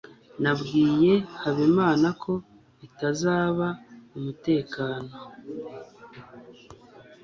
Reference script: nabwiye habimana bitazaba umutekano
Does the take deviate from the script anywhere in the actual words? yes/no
yes